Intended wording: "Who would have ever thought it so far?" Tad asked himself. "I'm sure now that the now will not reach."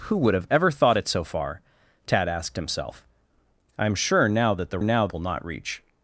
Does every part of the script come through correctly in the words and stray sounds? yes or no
yes